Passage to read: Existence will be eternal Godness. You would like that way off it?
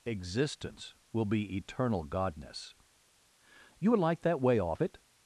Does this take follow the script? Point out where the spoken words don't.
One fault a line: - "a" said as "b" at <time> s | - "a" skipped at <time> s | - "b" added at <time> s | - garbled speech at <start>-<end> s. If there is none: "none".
none